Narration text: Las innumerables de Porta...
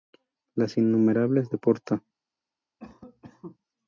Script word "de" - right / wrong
right